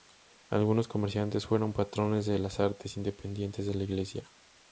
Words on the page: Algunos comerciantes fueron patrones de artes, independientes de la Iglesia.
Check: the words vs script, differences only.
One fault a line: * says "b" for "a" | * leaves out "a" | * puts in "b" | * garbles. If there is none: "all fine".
* puts in "las"